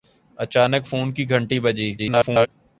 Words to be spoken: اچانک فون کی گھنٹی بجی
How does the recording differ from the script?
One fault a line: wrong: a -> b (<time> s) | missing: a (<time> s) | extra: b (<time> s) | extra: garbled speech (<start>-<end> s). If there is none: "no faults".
extra: garbled speech (2.0-2.5 s)